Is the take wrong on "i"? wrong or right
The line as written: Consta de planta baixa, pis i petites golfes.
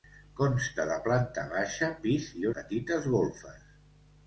right